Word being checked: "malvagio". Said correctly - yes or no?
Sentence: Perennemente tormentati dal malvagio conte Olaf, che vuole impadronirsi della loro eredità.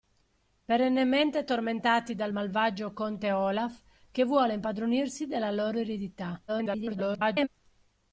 yes